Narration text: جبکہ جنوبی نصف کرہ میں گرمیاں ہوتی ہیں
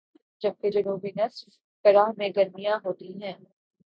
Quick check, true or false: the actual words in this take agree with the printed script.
true